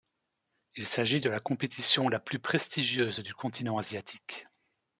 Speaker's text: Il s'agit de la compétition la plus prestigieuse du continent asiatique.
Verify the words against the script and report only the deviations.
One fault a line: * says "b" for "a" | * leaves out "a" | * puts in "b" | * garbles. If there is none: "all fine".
all fine